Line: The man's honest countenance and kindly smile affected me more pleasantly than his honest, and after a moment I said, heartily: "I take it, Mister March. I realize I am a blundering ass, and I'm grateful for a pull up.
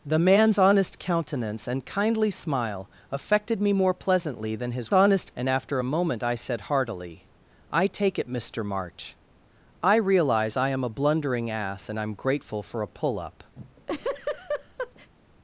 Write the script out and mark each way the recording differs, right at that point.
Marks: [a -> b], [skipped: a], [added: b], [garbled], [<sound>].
The man's honest countenance and kindly smile affected me more pleasantly than his honest, and after a moment I said, heartily: "I take it, Mister March. I realize I am a blundering ass, and I'm grateful for a pull up. [laugh]